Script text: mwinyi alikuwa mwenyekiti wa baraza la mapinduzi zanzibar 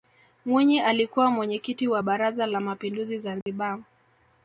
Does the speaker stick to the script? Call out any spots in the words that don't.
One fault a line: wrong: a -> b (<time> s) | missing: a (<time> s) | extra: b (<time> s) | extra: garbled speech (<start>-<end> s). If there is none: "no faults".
no faults